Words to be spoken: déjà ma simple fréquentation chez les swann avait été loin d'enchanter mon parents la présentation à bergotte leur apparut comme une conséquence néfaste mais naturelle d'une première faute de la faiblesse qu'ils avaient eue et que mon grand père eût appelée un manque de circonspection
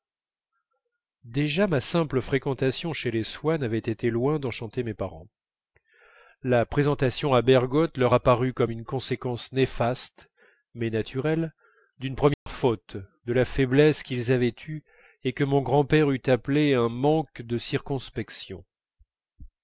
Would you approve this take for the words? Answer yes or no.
no